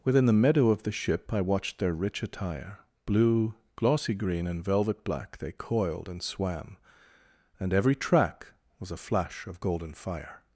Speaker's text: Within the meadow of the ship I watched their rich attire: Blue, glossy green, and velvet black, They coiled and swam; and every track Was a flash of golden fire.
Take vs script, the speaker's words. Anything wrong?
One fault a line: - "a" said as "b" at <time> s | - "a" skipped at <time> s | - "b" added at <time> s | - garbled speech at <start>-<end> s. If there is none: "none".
none